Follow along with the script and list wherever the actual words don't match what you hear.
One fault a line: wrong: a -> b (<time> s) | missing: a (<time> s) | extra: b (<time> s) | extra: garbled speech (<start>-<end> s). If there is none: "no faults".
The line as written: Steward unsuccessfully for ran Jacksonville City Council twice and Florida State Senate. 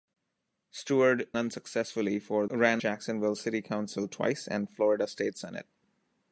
no faults